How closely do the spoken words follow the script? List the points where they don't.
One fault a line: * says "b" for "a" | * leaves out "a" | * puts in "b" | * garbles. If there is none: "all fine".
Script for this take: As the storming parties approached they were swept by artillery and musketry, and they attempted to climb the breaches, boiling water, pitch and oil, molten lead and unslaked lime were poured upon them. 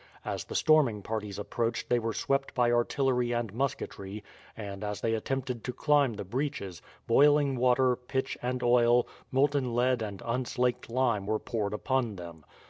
* puts in "as"